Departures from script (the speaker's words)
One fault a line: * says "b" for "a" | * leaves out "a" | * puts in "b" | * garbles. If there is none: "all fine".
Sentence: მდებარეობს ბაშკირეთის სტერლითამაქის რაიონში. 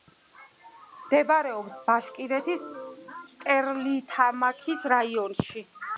all fine